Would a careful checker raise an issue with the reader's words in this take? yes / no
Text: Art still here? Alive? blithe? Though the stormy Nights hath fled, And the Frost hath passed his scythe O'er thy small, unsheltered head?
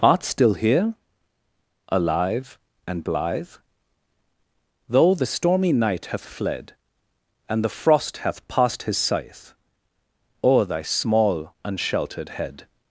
yes